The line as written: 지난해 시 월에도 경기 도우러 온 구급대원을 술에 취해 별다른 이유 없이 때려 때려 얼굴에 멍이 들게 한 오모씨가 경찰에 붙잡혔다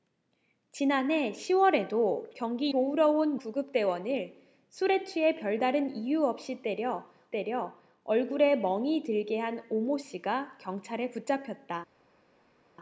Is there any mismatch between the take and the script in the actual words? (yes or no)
no